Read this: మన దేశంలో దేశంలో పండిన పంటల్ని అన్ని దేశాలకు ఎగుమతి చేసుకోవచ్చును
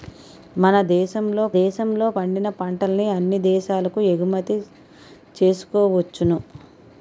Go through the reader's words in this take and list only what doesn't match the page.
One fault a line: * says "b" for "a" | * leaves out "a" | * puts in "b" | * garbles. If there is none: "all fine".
all fine